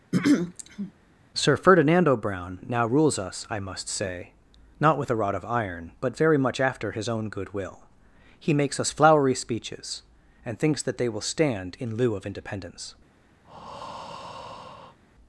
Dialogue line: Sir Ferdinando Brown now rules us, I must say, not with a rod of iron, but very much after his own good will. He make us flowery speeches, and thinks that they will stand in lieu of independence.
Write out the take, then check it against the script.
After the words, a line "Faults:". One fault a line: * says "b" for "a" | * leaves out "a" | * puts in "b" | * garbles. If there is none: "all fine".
Sir Ferdinando Brown now rules us, I must say, not with a rod of iron, but very much after his own good will. He makes us flowery speeches, and thinks that they will stand in lieu of independence.
Faults:
* says "makes" for "make"